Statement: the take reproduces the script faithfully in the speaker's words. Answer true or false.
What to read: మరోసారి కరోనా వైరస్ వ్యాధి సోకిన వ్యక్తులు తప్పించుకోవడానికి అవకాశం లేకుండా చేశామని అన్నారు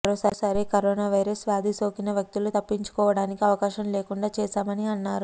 true